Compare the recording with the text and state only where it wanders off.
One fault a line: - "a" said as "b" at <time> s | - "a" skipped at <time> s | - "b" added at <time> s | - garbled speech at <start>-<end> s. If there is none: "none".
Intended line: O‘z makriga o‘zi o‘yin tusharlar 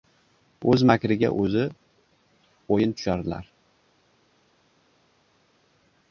none